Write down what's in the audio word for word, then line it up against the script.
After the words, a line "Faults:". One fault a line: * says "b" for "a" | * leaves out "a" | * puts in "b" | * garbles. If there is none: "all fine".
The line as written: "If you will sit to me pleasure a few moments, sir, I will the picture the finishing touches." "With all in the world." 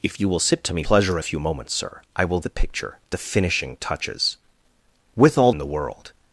"If you will sit to me pleasure a few moments, sir, I will the picture the finishing touches." "With all in the world."
Faults:
all fine